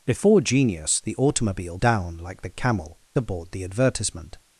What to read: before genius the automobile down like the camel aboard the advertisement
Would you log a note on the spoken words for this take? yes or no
no